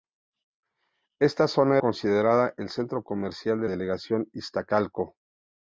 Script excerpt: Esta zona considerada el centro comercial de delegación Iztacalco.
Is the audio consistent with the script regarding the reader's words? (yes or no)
yes